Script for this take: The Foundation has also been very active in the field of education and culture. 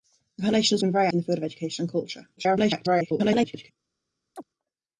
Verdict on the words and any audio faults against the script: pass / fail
fail